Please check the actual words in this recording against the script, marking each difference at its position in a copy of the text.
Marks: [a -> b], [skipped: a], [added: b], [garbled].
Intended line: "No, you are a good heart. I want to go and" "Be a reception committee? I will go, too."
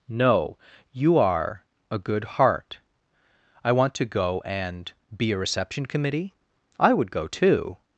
"No, you are a good heart. I want to go and" "Be a reception committee? I [will -> would] go, too."